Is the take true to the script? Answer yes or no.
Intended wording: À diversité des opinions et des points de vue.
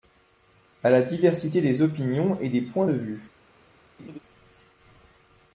no